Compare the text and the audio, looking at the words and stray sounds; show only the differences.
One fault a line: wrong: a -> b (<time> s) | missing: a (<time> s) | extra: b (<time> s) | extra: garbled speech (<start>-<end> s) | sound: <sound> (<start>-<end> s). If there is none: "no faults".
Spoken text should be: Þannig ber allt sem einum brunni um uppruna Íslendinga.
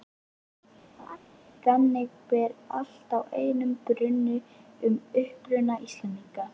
sound: laugh (1.0-1.2 s)
wrong: sem -> að (3.2 s)